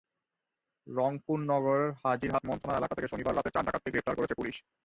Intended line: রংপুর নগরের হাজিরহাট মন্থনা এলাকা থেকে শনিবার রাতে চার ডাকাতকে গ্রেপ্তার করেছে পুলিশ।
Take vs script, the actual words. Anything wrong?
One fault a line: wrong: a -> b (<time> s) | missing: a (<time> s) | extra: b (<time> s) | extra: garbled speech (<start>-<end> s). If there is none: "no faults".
no faults